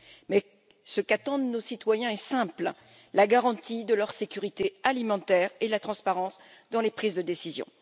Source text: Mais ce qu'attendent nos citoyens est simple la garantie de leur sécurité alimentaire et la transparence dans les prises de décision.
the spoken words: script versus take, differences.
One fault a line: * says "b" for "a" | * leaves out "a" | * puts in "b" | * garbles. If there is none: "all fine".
all fine